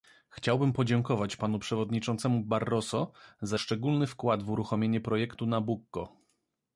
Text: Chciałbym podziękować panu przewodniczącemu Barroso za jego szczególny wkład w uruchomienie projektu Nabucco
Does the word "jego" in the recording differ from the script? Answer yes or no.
yes